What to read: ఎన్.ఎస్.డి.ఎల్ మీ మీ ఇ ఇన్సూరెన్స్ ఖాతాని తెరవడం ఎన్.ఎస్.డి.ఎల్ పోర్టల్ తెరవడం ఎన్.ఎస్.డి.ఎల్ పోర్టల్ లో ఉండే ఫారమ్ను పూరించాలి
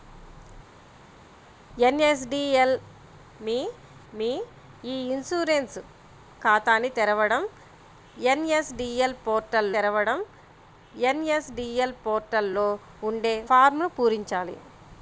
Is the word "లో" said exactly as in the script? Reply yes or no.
yes